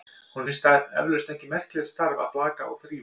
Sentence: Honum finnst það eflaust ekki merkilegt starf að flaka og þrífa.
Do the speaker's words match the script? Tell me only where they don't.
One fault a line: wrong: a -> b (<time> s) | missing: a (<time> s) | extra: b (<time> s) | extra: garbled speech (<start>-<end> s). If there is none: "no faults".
no faults